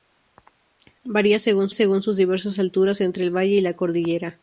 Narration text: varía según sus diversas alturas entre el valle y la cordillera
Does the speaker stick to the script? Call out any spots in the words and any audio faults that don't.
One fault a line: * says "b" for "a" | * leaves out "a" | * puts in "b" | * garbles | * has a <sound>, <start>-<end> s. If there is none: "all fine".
* puts in "según"